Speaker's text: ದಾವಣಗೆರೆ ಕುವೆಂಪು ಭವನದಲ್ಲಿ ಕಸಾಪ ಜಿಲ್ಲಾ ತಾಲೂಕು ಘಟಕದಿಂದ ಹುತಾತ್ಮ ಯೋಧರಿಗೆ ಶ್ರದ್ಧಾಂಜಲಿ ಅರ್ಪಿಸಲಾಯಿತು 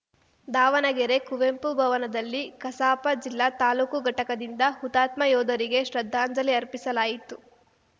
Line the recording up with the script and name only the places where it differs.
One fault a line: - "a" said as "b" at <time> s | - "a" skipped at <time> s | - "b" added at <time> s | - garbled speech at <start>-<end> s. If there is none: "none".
none